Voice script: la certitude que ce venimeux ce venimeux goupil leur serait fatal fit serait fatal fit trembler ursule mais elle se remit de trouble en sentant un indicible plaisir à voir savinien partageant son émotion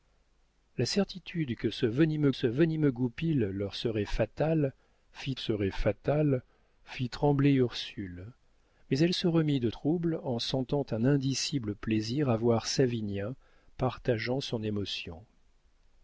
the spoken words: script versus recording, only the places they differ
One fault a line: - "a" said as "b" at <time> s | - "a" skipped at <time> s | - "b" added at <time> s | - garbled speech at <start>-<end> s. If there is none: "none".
none